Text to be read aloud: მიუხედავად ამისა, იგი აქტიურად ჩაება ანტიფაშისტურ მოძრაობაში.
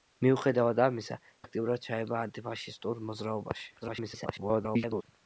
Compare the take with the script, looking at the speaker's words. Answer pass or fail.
fail